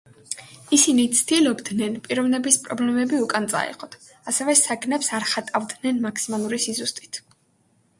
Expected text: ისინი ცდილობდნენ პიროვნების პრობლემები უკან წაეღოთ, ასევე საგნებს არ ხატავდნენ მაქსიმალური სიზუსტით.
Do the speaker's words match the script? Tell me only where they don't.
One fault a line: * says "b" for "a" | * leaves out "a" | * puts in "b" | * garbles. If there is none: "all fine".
all fine